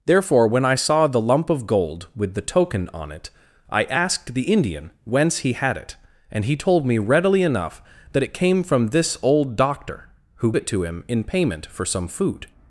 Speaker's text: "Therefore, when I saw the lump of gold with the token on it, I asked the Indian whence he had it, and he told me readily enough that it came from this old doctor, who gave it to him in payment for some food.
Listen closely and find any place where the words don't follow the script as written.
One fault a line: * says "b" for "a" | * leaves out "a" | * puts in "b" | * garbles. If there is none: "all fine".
* leaves out "gave"